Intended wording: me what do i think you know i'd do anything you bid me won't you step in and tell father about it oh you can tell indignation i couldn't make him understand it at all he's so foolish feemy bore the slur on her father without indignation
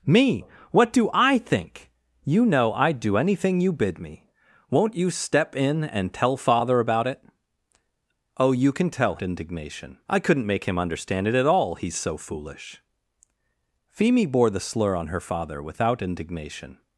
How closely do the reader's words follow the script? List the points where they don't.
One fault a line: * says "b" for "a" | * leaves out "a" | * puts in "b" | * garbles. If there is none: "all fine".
all fine